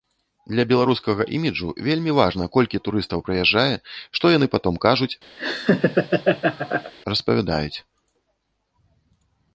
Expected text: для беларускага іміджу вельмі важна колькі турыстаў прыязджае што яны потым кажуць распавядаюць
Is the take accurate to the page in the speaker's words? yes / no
yes